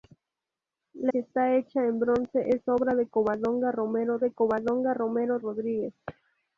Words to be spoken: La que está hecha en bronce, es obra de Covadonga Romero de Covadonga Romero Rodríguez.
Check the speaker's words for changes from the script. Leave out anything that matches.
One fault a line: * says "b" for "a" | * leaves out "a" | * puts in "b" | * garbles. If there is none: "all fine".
all fine